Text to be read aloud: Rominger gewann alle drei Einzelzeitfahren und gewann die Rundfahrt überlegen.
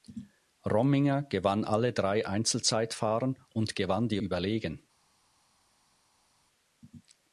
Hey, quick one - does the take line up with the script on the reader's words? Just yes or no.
no